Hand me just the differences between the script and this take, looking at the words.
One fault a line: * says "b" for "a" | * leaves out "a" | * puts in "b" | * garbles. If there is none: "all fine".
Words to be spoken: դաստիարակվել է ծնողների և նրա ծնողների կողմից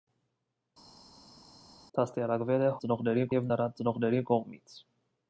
all fine